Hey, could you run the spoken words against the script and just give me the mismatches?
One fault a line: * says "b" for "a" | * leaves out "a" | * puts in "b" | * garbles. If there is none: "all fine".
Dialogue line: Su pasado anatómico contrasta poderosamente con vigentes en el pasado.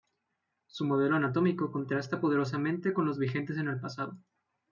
* says "modelo" for "pasado"
* puts in "los"